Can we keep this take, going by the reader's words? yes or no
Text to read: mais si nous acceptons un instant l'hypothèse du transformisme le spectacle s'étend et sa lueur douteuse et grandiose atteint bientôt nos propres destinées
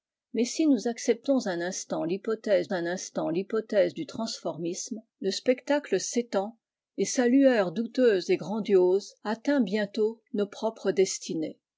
no